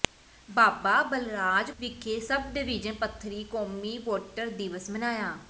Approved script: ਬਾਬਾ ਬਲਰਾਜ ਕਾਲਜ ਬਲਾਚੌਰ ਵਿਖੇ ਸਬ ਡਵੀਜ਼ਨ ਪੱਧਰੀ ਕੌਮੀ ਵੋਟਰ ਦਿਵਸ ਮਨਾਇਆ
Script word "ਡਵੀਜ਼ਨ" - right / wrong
right